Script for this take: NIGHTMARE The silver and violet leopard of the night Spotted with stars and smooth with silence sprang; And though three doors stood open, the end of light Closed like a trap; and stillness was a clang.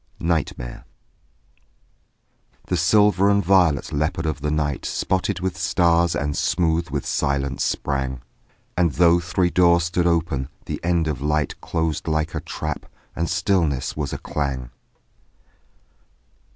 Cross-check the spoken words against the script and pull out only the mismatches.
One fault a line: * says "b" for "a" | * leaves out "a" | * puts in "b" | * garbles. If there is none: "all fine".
all fine